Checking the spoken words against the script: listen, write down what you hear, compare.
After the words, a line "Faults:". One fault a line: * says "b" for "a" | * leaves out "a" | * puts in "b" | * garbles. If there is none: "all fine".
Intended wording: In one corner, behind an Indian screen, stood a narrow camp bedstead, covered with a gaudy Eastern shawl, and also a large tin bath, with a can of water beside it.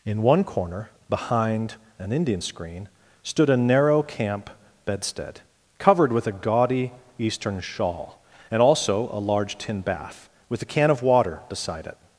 In one corner, behind an Indian screen, stood a narrow camp bedstead, covered with a gaudy Eastern shawl, and also a large tin bath, with a can of water beside it.
Faults:
all fine